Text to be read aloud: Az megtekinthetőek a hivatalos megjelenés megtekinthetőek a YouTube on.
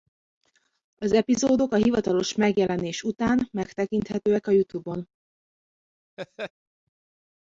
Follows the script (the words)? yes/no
no